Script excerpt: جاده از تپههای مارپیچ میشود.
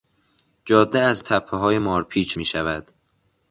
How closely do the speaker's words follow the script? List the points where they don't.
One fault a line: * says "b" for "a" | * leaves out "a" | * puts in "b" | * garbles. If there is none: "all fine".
all fine